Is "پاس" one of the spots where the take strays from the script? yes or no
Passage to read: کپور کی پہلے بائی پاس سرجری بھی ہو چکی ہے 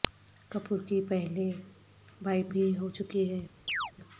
yes